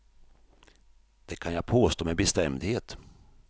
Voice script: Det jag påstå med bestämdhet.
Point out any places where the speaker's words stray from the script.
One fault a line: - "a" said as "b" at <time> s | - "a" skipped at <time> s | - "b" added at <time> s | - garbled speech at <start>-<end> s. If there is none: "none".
- "kan" added at 1.4 s